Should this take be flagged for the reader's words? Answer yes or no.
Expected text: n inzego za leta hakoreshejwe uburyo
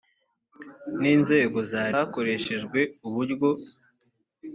yes